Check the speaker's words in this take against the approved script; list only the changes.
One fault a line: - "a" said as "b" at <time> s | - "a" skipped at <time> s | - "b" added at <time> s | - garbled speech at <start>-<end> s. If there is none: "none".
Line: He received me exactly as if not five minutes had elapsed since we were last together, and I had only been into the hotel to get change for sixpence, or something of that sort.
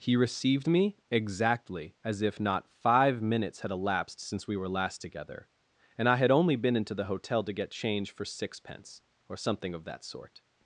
none